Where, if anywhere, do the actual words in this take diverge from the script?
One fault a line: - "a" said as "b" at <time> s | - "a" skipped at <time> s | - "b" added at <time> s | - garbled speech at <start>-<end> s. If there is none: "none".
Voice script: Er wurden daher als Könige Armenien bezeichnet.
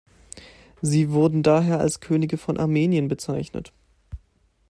- "Er" said as "Sie" at 0.8 s
- "von" added at 2.4 s